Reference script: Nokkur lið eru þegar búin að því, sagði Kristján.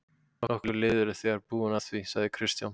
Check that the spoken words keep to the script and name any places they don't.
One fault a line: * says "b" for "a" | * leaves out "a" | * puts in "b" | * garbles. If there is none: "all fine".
all fine